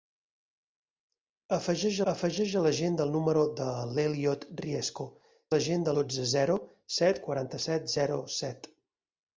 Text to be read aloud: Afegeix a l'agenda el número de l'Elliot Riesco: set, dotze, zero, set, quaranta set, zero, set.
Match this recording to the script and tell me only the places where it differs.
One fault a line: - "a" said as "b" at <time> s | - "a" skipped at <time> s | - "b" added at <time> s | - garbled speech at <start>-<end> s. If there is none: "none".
- "afegeix" added at 2.1 s
- "set" said as "l'agenda" at 5.5 s